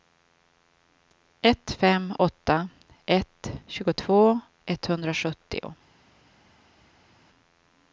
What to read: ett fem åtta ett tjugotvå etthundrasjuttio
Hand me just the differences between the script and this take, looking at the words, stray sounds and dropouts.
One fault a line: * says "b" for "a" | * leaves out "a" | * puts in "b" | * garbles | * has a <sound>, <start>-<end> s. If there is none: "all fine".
all fine